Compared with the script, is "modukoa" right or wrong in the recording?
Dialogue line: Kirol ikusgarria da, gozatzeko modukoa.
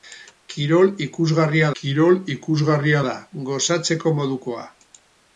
right